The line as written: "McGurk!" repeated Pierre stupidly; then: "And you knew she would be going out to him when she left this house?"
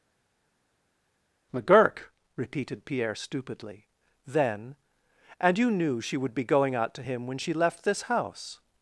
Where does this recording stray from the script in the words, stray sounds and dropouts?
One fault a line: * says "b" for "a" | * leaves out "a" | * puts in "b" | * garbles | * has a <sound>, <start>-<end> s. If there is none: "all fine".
all fine